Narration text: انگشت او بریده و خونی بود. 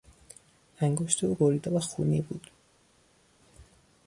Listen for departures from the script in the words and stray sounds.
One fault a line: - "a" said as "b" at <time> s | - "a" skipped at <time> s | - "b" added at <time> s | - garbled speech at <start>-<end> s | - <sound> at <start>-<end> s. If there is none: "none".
none